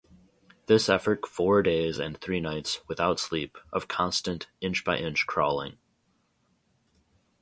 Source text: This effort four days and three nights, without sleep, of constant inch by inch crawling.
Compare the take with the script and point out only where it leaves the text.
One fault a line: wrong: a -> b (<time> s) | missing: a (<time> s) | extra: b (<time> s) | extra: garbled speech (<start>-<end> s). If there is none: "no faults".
no faults